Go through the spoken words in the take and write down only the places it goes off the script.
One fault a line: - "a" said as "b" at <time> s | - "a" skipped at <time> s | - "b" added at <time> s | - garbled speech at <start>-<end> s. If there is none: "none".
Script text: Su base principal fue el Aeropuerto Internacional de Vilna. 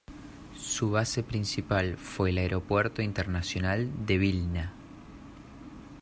none